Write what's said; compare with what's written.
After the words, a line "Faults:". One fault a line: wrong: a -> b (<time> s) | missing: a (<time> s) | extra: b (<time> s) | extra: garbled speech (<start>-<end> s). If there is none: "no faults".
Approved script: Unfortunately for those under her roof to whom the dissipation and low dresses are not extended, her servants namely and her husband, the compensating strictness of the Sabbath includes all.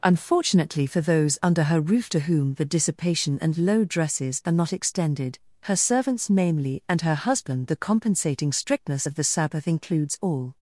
Unfortunately for those under her roof to whom the dissipation and low dresses are not extended, her servants namely and her husband, the compensating strictness of the Sabbath includes all.
Faults:
no faults